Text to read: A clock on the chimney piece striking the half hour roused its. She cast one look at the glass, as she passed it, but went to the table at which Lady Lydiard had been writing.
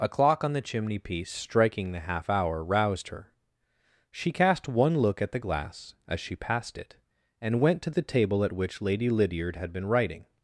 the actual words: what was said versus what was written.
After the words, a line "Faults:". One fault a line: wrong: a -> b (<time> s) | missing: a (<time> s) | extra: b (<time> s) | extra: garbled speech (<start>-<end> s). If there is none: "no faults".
A clock on the chimney piece striking the half hour roused her. She cast one look at the glass, as she passed it, and went to the table at which Lady Lydiard had been writing.
Faults:
wrong: its -> her (3.1 s)
wrong: but -> and (7.4 s)